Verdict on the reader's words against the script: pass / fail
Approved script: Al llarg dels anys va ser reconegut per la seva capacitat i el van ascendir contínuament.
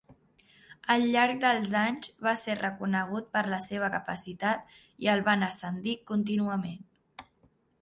pass